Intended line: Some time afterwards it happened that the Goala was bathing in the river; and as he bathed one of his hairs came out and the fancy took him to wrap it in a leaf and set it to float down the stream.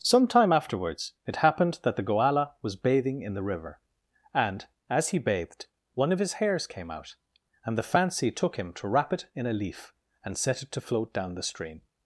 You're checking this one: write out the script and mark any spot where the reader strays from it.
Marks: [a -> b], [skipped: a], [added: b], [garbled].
Some time afterwards it happened that the Goala was bathing in the river; and as he bathed one of his hairs came out and the fancy took him to wrap it in a leaf and set it to float down the stream.